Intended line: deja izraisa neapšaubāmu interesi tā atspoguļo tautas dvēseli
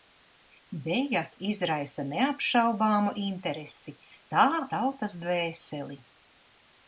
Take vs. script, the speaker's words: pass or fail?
fail